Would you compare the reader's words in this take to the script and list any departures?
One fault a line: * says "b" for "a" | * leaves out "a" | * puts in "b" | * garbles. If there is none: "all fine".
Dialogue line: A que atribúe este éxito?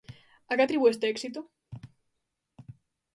all fine